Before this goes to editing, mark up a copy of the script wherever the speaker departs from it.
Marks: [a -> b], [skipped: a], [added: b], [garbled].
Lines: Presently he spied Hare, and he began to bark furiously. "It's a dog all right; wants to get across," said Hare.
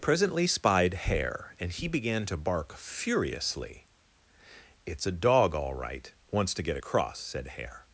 Presently [skipped: he] spied Hare, and he began to bark furiously. "It's a dog all right; wants to get across," said Hare.